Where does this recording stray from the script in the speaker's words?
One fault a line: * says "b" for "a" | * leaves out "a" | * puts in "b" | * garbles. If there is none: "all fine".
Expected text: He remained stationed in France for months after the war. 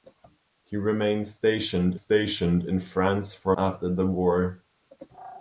* puts in "stationed"
* leaves out "months"